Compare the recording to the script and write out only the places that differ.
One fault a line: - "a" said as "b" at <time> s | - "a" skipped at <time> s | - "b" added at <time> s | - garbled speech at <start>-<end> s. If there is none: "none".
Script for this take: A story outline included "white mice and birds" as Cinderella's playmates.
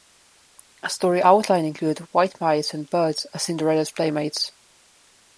none